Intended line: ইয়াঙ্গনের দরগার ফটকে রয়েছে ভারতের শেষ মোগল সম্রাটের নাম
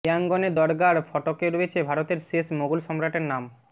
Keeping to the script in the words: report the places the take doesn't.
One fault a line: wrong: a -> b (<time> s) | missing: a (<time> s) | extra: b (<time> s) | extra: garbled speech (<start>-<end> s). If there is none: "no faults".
no faults